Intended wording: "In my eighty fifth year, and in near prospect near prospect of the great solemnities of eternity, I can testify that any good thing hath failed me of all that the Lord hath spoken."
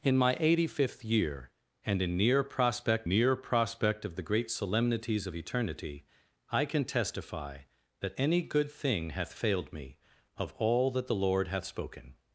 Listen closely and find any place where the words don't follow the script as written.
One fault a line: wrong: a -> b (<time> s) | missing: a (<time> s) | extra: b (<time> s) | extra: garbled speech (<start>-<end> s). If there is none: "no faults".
no faults